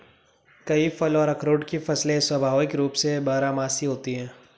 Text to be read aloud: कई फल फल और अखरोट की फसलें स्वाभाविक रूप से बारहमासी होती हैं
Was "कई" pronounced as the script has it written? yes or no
yes